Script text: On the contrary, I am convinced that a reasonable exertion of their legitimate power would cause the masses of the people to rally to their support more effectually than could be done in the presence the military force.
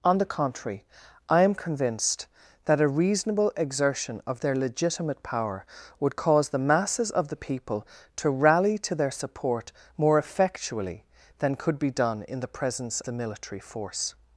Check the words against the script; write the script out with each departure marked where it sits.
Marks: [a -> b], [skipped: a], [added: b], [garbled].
On the contrary, I am convinced that a reasonable exertion of their legitimate power would cause the masses of the people to rally to their support more effectually than could be done in the presence the military force.